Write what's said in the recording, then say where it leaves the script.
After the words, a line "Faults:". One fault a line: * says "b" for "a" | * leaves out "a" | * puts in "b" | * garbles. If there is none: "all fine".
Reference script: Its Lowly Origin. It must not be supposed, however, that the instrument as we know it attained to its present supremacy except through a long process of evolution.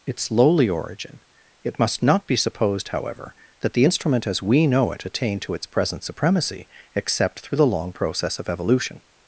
Its Lowly Origin. It must not be supposed, however, that the instrument as we know it attained to its present supremacy except through the long process of evolution.
Faults:
* says "the" for "a"